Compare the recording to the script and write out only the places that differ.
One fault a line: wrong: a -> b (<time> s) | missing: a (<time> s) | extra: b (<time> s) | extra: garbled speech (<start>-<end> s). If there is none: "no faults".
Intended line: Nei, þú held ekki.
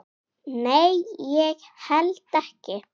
wrong: þú -> ég (1.2 s)